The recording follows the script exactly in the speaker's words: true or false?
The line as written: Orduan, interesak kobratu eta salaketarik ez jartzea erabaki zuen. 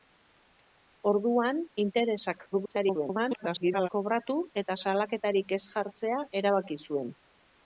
false